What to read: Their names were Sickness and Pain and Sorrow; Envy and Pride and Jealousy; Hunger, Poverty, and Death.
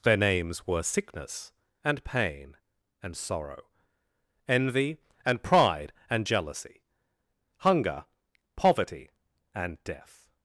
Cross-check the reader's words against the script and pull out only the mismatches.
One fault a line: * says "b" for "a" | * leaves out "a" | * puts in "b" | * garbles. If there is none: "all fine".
all fine